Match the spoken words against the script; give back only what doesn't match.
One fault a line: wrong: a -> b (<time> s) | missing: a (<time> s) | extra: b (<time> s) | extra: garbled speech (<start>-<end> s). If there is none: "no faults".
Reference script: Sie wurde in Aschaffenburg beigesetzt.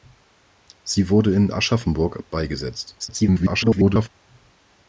extra: garbled speech (3.0-4.1 s)